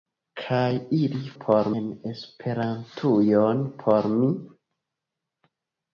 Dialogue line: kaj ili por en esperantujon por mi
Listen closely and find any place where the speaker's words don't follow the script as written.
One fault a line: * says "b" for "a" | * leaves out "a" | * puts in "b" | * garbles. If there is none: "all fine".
all fine